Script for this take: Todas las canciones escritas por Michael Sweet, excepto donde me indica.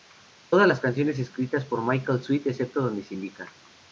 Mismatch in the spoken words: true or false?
true